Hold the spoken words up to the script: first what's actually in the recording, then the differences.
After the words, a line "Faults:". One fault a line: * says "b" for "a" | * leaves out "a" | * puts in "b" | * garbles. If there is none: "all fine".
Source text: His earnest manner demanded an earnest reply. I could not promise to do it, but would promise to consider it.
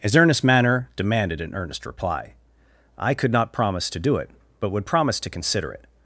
His earnest manner demanded an earnest reply. I could not promise to do it, but would promise to consider it.
Faults:
all fine